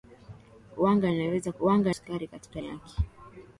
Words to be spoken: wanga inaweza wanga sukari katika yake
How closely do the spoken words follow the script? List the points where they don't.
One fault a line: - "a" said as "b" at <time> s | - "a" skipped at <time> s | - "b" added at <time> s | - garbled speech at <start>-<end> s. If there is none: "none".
none